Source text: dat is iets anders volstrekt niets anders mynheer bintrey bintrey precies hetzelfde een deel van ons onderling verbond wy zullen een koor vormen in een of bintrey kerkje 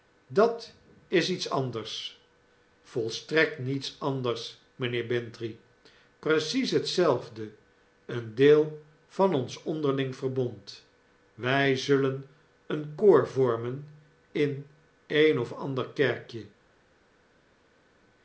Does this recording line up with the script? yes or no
no